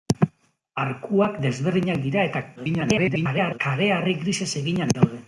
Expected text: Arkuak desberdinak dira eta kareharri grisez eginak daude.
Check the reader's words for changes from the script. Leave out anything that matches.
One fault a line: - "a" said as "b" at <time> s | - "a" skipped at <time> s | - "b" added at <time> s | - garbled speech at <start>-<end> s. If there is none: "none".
- garbled speech at 2.6-3.6 s